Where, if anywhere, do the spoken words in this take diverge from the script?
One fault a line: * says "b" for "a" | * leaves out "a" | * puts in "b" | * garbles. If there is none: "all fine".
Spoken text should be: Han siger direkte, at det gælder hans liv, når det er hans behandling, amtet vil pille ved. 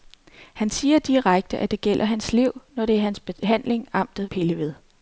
* leaves out "vil"